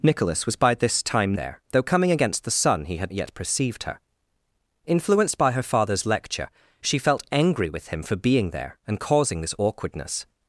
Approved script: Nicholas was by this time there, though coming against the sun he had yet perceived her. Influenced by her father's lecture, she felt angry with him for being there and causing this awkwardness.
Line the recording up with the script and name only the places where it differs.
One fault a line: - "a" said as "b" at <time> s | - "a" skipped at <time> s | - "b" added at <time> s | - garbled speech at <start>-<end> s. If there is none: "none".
none